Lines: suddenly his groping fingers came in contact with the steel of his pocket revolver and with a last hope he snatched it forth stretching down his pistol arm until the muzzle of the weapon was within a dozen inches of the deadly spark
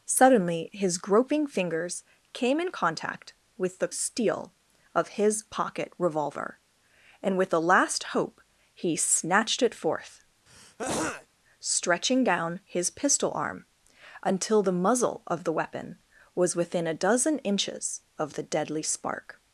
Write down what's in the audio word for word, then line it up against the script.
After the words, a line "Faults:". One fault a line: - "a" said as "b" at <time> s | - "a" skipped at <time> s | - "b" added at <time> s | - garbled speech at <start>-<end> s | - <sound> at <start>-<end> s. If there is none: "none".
suddenly his groping fingers came in contact with the steel of his pocket revolver and with a last hope he snatched it forth stretching down his pistol arm until the muzzle of the weapon was within a dozen inches of the deadly spark
Faults:
- throat clearing at 10.5-11.3 s